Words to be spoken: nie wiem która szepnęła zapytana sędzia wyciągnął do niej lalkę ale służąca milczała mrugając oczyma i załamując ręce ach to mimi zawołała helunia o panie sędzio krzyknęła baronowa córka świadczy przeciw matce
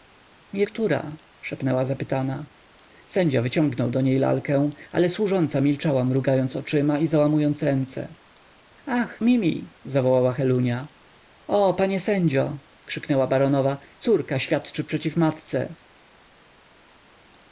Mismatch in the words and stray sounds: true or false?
true